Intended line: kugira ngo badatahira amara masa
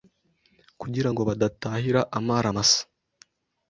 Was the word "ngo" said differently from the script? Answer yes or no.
no